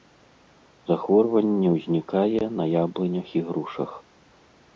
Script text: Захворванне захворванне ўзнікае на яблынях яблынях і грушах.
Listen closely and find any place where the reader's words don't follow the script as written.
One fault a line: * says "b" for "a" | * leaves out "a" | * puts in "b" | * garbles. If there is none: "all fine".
* leaves out "захворванне"
* leaves out "яблынях"